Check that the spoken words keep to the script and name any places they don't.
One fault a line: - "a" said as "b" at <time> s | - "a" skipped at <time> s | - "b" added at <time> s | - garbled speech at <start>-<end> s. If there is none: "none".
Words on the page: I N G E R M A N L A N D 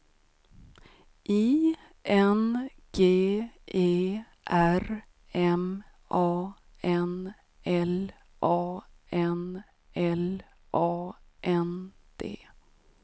- "L A N" added at 9.9 s